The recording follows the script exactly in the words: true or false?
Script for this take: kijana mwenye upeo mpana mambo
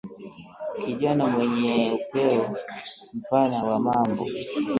false